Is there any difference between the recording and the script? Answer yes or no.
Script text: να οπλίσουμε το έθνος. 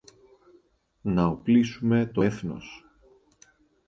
no